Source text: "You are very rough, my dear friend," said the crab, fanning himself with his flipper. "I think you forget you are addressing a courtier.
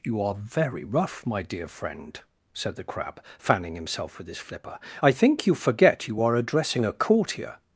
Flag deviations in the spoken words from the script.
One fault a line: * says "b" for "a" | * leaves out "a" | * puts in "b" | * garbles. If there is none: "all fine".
all fine